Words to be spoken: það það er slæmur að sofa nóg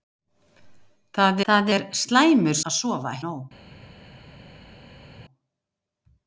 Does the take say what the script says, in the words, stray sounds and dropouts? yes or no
yes